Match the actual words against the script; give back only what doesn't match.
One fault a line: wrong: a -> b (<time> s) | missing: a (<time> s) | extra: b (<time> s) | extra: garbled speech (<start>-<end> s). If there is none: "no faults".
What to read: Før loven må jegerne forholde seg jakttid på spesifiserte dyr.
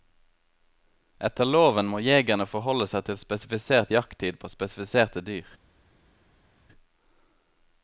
wrong: Før -> Etter (1.3 s)
extra: til spesifisert (3.1 s)